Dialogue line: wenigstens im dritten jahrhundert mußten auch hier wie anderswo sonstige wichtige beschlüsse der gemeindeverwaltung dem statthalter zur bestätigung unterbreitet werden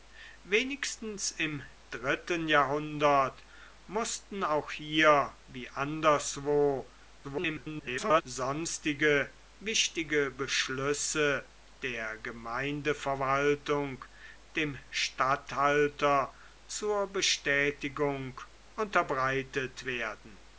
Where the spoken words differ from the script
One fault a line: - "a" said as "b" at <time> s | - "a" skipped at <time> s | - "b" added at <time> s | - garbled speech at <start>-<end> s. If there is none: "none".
- garbled speech at 7.2-8.2 s